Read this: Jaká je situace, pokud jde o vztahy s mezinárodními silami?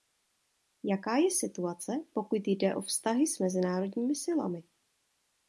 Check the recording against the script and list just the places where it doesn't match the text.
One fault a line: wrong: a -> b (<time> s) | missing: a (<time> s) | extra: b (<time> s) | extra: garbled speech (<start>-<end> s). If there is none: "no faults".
no faults